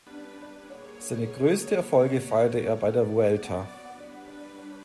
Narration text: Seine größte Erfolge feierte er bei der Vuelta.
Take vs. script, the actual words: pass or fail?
pass